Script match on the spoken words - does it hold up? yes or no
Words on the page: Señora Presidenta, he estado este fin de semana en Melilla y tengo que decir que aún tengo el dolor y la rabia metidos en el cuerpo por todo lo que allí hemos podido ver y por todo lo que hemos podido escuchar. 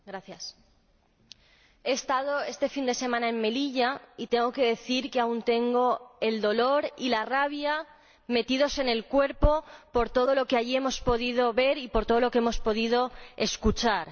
yes